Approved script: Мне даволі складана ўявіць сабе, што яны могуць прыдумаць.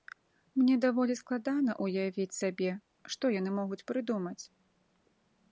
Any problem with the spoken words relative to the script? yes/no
no